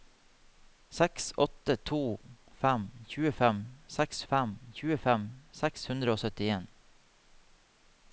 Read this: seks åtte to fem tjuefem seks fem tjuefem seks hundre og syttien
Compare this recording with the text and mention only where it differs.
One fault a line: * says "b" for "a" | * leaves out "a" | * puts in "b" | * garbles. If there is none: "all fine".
all fine